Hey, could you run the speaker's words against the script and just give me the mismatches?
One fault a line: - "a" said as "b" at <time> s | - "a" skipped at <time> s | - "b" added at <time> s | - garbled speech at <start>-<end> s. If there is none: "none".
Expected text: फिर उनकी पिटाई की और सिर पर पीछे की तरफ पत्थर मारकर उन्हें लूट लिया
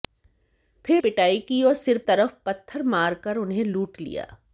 - "उनकी" skipped at 1.0 s
- "पर पीछे की" skipped at 2.0 s